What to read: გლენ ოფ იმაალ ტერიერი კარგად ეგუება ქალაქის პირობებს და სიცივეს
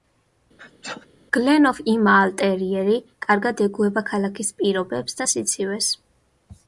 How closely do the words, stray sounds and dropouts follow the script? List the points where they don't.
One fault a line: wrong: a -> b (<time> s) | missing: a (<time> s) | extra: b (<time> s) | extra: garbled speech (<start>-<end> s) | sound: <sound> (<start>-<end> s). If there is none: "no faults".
sound: sneeze (0.6-1.1 s)